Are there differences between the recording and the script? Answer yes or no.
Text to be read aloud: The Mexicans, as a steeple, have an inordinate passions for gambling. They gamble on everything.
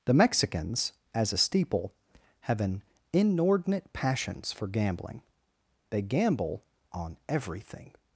no